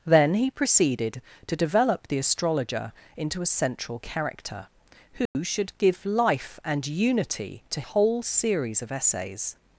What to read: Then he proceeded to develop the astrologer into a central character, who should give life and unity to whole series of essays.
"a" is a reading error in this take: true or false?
false